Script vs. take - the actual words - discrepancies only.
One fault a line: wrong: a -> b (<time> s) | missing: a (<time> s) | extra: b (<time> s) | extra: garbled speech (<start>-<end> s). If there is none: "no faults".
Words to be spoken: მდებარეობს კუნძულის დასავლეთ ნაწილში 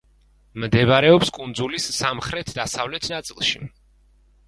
extra: სამხრეთ (2.0 s)